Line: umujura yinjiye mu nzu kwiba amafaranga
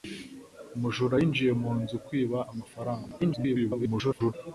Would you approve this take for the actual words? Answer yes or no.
no